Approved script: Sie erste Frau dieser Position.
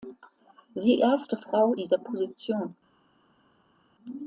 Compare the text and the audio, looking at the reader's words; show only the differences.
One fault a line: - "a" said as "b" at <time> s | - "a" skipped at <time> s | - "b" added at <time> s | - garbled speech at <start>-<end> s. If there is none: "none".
none